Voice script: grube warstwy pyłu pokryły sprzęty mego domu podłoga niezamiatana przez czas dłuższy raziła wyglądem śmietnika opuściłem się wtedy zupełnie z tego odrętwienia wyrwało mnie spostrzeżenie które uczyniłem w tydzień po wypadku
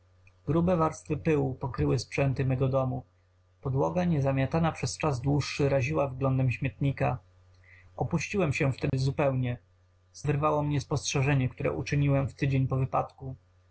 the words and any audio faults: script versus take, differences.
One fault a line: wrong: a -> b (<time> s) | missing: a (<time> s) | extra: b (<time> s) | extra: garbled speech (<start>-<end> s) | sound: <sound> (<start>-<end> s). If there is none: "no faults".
sound: dropout (8.9-8.9 s)
missing: tego odrętwienia (10.2 s)